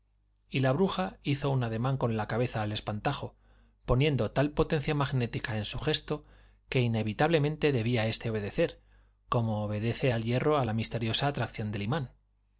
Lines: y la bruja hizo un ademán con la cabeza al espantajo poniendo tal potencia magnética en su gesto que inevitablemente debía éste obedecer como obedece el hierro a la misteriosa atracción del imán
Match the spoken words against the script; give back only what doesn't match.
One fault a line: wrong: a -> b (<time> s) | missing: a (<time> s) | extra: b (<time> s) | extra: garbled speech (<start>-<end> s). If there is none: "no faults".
no faults